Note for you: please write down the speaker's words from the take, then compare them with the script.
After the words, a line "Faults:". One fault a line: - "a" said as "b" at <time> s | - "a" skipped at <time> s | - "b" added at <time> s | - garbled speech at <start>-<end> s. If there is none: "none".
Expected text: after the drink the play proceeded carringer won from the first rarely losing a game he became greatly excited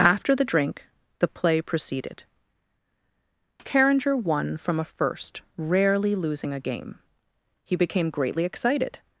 after the drink the play proceeded carringer won from a first rarely losing a game he became greatly excited
Faults:
- "the" said as "a" at 4.8 s